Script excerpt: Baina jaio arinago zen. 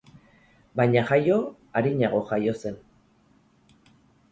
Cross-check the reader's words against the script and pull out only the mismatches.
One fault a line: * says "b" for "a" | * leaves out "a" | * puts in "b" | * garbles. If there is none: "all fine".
* puts in "jaio"